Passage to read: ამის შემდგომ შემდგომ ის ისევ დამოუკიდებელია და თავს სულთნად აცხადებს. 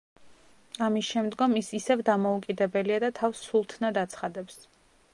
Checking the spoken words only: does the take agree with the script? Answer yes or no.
no